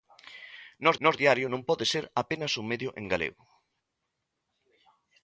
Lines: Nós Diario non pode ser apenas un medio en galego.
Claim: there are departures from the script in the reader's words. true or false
true